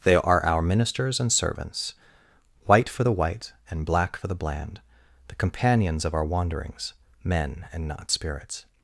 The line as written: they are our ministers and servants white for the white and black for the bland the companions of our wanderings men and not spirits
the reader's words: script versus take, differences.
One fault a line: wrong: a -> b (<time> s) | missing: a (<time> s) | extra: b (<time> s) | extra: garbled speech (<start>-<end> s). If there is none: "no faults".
no faults